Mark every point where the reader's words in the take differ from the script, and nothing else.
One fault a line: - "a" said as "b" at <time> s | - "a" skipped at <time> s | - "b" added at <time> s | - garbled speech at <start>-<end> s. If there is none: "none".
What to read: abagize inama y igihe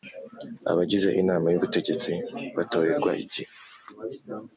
- "ubutegetsi batorerwa" added at 1.6 s